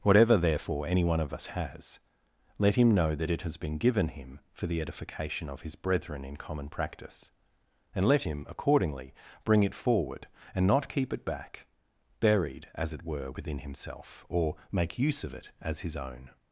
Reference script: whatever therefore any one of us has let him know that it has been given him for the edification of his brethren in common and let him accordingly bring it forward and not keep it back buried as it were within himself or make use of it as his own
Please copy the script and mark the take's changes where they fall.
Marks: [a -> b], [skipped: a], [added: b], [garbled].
whatever therefore any one of us has let him know that it has been given him for the edification of his brethren in common [added: practice] and let him accordingly bring it forward and not keep it back buried as it were within himself or make use of it as his own